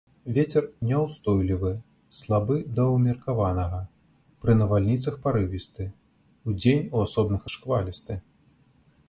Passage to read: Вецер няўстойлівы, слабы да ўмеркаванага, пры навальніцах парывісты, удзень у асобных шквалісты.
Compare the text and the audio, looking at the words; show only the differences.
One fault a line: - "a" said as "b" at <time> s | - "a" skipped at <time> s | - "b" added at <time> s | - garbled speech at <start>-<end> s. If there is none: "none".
none